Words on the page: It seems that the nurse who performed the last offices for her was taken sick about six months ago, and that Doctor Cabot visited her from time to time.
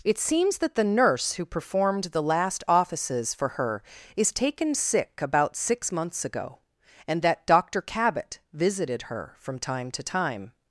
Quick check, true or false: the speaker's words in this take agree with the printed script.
false